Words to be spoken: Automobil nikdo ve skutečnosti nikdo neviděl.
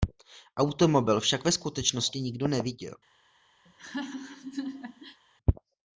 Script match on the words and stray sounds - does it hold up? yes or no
no